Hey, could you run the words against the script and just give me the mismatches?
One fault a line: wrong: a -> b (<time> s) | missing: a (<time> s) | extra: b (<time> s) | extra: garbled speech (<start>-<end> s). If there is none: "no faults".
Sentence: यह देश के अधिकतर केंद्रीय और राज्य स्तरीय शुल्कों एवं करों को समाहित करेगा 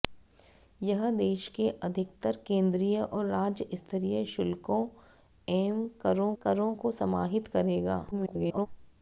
extra: करों (6.4 s)
extra: garbled speech (8.1-8.7 s)